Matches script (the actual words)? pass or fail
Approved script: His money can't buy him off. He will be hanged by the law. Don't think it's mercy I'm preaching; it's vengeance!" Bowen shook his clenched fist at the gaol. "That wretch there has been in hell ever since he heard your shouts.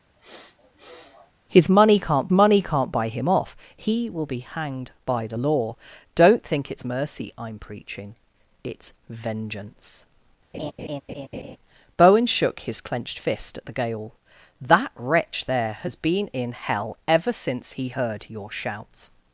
fail